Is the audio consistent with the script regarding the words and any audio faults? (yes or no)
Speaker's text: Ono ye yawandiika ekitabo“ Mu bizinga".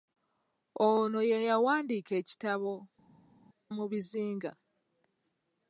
yes